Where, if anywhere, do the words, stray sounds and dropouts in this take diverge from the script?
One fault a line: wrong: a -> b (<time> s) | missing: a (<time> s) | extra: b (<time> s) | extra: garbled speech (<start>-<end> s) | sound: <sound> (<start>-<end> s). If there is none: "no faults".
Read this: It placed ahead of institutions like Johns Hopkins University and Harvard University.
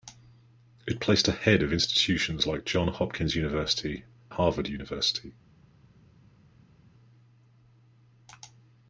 missing: and (4.0 s)